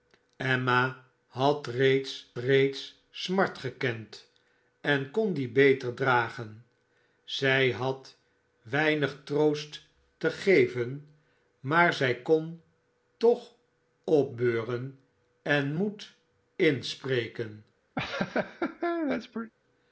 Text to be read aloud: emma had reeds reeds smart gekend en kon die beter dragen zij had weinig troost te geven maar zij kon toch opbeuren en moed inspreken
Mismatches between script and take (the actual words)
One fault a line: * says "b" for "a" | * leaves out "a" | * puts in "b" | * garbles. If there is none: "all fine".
all fine